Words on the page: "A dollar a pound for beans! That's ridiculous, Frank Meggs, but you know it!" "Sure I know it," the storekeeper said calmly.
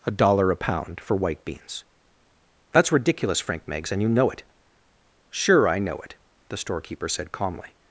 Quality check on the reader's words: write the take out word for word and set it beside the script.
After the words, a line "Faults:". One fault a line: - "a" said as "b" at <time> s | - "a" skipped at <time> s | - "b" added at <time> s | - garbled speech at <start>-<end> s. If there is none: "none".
"A dollar a pound for white beans! That's ridiculous, Frank Meggs, and you know it!" "Sure I know it," the storekeeper said calmly.
Faults:
- "white" added at 1.2 s
- "but" said as "and" at 3.9 s